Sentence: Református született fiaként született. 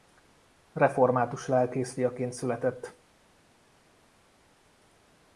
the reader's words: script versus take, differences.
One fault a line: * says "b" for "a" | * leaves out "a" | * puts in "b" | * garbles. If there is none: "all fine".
* says "lelkész" for "született"